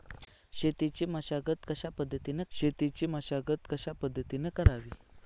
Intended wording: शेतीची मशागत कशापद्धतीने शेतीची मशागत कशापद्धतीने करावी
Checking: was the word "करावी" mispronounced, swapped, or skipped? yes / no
no